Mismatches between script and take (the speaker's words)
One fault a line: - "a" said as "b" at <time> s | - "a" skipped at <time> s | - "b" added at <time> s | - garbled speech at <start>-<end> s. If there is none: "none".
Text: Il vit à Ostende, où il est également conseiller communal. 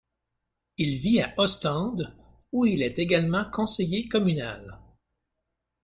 none